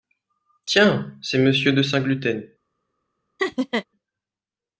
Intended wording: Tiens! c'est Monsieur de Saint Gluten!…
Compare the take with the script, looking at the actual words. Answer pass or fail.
pass